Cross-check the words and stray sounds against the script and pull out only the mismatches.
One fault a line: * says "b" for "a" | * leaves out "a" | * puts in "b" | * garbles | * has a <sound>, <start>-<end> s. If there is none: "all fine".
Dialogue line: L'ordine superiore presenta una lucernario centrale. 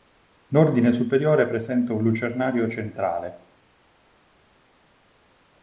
* says "un" for "una"